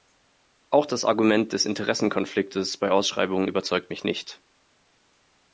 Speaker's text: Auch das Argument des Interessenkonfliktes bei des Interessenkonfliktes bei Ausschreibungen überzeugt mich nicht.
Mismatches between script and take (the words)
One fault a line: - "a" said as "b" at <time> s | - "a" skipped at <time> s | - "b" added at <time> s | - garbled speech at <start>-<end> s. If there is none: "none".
- "des Interessenkonfliktes bei" skipped at 2.9 s